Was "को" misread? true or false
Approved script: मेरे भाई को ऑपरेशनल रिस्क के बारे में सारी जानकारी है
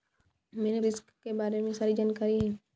true